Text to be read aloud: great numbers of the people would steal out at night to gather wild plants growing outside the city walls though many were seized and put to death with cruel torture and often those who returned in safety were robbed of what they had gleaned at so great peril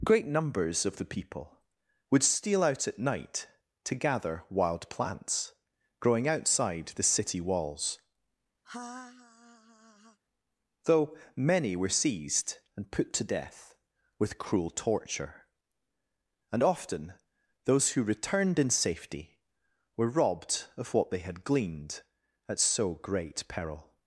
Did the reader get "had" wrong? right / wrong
right